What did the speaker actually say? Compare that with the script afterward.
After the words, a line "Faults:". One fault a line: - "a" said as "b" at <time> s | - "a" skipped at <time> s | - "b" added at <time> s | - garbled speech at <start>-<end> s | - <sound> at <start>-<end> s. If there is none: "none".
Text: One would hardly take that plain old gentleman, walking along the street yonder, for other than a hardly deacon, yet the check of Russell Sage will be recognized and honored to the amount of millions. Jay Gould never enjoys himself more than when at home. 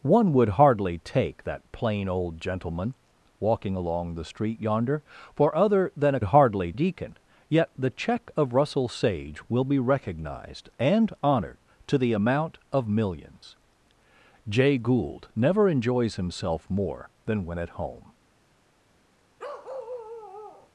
One would hardly take that plain old gentleman, walking along the street yonder, for other than a hardly deacon, yet the check of Russell Sage will be recognized and honored to the amount of millions. Jay Gould never enjoys himself more than when at home.
Faults:
- bark at 19.4-20.7 s